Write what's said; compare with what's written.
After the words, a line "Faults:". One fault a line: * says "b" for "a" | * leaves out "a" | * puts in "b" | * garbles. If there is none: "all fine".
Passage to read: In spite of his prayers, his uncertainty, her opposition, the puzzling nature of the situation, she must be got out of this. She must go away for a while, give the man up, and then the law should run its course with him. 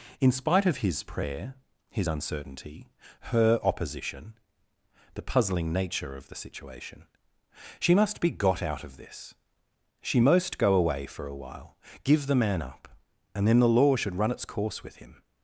In spite of his prayer, his uncertainty, her opposition, the puzzling nature of the situation, she must be got out of this. She most go away for a while, give the man up, and then the law should run its course with him.
Faults:
* says "prayer" for "prayers"
* says "most" for "must"